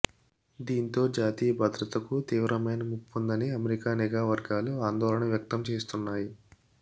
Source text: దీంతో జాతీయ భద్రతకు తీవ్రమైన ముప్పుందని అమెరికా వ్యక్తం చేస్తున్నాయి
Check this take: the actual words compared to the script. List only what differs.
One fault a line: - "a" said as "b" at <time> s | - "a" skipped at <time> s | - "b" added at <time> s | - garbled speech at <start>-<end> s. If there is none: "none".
- "నిఘా వర్గాలు ఆందోళన" added at 4.0 s